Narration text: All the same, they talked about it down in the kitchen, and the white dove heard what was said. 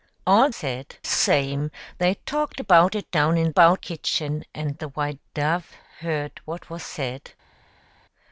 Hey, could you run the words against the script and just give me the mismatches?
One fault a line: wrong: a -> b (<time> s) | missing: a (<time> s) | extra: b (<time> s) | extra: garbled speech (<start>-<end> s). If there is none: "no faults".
wrong: the -> said (0.5 s)
wrong: the -> about (3.5 s)